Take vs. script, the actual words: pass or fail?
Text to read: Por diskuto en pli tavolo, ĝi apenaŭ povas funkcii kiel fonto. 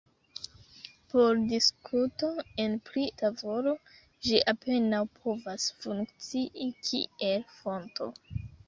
pass